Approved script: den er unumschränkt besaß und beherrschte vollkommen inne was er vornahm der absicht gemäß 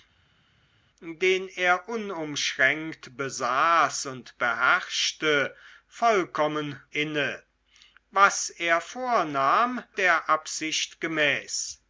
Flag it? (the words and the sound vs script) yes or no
no